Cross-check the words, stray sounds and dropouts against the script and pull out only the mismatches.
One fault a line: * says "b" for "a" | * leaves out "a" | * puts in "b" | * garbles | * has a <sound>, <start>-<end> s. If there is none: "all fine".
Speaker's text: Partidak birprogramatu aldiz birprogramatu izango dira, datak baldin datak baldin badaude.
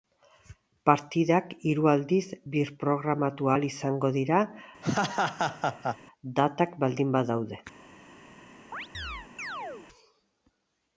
* says "hiru" for "birprogramatu"
* puts in "ahal"
* has a laugh, 4.8-6.0 s
* leaves out "datak baldin"
* has a chirp, 8.7-9.9 s